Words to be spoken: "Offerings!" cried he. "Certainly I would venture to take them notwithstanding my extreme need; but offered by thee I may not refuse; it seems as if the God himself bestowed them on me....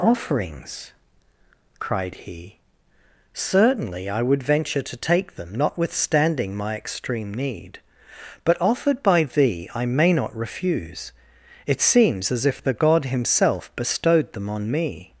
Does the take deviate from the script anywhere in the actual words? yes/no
no